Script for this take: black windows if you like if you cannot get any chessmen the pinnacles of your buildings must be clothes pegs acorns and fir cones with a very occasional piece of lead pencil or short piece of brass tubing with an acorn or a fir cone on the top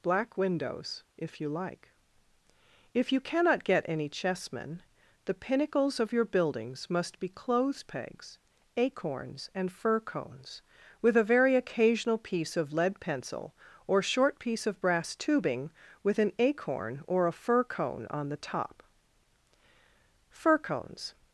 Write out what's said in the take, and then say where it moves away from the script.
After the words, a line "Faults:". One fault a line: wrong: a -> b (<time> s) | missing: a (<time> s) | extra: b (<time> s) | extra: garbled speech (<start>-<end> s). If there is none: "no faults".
black windows if you like if you cannot get any chessmen the pinnacles of your buildings must be clothes pegs acorns and fir cones with a very occasional piece of lead pencil or short piece of brass tubing with an acorn or a fir cone on the top fir cones
Faults:
extra: fir cones (20.3 s)